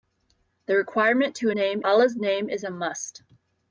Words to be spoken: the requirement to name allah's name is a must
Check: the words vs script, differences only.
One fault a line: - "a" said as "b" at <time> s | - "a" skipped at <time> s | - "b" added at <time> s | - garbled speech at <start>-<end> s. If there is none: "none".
none